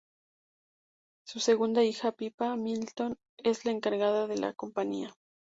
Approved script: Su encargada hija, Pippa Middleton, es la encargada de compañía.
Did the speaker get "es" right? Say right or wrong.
right